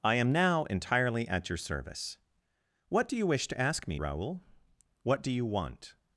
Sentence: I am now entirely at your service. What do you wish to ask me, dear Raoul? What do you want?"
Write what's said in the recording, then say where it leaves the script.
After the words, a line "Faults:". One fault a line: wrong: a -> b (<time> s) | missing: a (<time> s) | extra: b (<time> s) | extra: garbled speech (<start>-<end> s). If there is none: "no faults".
I am now entirely at your service. What do you wish to ask me, Raoul? What do you want?"
Faults:
missing: dear (4.0 s)